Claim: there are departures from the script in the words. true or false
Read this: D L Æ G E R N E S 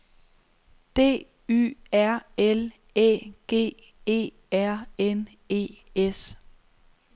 true